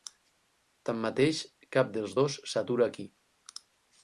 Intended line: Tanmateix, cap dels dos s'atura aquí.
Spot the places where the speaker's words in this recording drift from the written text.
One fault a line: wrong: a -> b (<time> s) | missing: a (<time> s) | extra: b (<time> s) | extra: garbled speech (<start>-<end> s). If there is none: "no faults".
no faults